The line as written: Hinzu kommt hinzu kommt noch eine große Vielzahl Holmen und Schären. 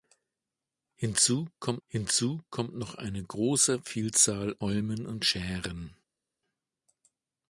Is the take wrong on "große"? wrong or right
right